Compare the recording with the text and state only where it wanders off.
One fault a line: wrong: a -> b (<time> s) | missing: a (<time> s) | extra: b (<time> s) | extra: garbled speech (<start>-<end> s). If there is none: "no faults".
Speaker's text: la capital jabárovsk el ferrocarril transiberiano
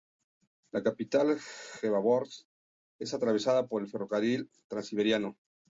extra: es atravesada por (3.0 s)